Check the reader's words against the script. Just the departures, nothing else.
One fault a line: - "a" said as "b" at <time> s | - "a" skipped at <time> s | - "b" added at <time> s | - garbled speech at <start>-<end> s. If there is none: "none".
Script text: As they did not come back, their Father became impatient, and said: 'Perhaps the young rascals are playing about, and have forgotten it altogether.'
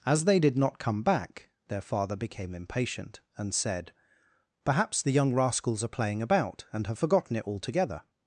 none